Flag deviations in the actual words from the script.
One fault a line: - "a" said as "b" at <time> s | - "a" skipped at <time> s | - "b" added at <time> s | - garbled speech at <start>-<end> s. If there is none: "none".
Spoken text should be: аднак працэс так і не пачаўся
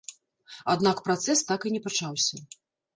none